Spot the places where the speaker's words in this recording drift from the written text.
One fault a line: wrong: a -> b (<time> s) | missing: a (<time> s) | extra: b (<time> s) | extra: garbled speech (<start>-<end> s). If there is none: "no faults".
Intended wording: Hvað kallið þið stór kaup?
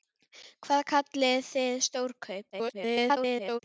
extra: garbled speech (2.5-3.6 s)